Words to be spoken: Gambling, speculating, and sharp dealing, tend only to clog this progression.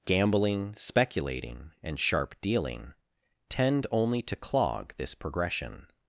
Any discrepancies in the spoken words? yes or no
no